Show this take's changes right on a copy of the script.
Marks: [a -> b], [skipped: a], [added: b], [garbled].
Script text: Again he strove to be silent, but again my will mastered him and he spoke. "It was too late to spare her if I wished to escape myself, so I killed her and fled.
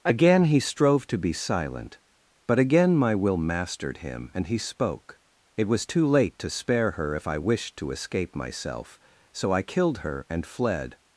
Again he strove to be silent, but again my will mastered him and he spoke. "It was too late to spare her if I wished to escape myself, so I killed her and fled.